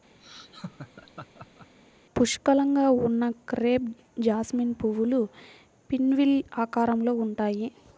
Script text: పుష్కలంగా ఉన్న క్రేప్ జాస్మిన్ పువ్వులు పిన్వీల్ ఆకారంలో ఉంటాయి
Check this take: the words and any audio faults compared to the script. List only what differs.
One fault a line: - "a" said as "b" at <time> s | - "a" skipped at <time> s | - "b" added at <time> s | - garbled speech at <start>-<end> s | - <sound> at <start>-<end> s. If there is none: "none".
- laugh at 0.2-1.8 s